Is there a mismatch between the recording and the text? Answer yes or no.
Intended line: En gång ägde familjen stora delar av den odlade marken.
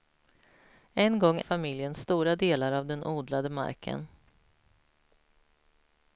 yes